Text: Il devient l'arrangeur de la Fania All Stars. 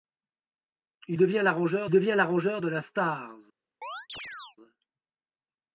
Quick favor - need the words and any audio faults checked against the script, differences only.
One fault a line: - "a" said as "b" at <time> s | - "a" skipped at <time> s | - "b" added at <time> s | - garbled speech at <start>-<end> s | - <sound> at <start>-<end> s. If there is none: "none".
- "devient l'arrangeur" added at 1.9 s
- "Fania All" skipped at 2.8 s
- chirp at 3.8-4.6 s